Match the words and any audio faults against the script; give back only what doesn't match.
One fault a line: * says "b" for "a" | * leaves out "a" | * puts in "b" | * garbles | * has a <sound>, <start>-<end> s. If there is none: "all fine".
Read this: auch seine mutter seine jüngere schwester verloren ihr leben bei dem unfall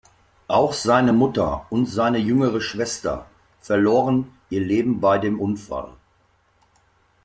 * puts in "und"